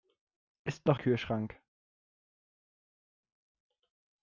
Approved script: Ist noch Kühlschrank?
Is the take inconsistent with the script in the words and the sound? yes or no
no